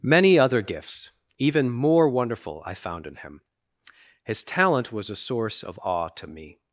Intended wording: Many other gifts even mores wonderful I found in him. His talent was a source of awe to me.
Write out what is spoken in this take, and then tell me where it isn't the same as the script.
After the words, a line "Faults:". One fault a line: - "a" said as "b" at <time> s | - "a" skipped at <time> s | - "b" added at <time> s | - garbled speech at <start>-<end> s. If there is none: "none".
Many other gifts even more wonderful I found in him. His talent was a source of awe to me.
Faults:
- "mores" said as "more" at 1.7 s